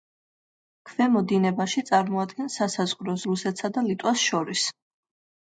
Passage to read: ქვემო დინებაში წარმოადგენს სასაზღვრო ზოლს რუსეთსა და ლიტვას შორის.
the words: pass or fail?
fail